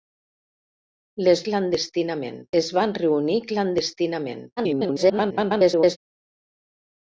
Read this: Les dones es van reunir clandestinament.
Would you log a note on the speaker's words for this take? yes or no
yes